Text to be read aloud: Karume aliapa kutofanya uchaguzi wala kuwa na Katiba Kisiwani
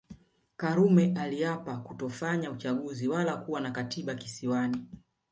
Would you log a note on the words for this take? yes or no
no